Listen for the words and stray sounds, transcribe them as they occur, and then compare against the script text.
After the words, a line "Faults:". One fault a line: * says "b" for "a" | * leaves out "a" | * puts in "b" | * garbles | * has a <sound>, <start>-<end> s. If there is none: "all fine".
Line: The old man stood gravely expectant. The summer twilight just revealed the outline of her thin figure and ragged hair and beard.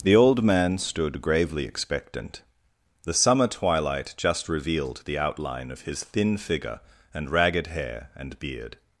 The old man stood gravely expectant. The summer twilight just revealed the outline of his thin figure and ragged hair and beard.
Faults:
* says "his" for "her"